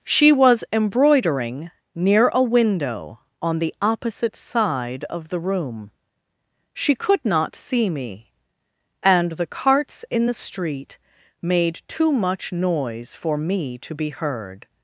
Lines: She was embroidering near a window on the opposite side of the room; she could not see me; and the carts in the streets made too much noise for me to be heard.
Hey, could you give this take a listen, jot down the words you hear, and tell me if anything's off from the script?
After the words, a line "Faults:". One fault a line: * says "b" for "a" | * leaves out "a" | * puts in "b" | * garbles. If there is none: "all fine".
She was embroidering near a window on the opposite side of the room; she could not see me; and the carts in the street made too much noise for me to be heard.
Faults:
* says "street" for "streets"